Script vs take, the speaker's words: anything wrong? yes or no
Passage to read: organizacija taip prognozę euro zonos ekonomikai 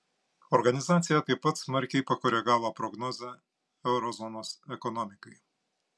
yes